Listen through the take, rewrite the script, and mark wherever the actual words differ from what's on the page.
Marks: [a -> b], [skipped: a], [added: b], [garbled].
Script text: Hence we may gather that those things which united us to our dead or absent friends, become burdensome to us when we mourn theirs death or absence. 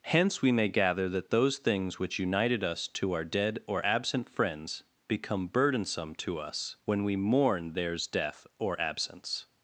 Hence we may gather that those things which united us to our dead or absent friends, become burdensome to us when we mourn theirs death or absence.